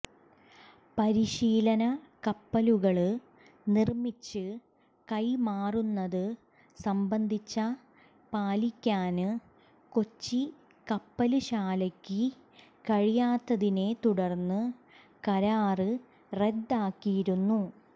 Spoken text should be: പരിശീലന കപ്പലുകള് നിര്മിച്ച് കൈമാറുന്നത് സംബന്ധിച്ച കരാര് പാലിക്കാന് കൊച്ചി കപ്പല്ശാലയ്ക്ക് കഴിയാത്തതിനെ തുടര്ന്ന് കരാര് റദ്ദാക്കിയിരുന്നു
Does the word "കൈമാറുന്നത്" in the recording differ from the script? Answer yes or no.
no